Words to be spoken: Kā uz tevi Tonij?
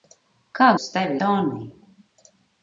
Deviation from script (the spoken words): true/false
false